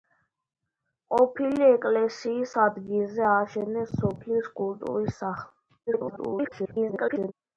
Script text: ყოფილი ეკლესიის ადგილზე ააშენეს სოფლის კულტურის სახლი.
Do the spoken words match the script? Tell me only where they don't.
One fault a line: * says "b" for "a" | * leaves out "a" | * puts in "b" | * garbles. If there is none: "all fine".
* garbles